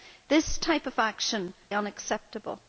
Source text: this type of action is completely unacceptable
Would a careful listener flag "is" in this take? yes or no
yes